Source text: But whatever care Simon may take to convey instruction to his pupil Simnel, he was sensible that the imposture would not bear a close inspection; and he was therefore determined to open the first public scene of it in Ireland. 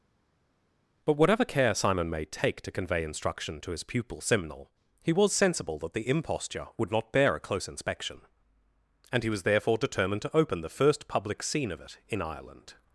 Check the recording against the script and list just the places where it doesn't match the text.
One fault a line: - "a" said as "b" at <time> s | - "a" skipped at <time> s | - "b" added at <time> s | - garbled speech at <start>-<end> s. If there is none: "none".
none